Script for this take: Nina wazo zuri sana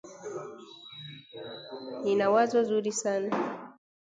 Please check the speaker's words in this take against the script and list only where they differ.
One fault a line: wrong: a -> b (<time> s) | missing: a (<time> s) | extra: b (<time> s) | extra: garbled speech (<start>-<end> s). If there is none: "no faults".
no faults